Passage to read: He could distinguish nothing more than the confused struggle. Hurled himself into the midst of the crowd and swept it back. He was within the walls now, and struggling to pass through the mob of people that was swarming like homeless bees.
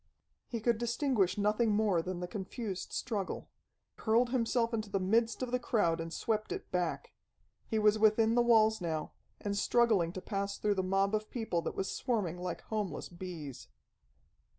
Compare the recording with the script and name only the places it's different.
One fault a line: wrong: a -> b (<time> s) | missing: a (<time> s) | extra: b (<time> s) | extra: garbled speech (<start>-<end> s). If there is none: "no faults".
no faults